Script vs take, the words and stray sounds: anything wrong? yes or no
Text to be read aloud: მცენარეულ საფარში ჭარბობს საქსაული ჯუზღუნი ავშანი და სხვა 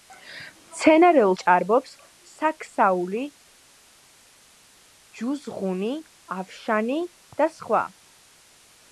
yes